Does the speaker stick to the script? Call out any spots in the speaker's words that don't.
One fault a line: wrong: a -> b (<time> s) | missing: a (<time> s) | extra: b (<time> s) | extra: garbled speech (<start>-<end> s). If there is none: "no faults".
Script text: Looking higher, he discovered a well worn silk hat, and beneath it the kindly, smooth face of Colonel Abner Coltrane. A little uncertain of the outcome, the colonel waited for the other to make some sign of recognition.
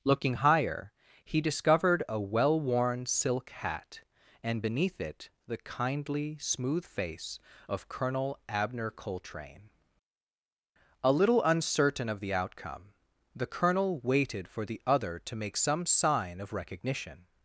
no faults